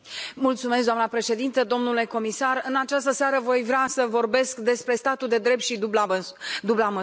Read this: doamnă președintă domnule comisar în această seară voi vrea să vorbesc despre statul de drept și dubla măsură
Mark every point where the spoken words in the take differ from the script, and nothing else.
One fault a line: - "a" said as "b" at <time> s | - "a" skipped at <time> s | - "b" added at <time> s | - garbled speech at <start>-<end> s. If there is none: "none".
none